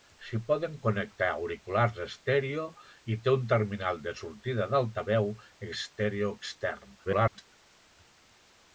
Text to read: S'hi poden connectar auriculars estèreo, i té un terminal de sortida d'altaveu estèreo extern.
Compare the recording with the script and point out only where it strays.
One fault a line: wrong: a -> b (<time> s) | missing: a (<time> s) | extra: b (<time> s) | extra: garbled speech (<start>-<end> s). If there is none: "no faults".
extra: garbled speech (7.0-7.5 s)